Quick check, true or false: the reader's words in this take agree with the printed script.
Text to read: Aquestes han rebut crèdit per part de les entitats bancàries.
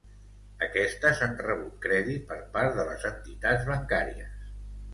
true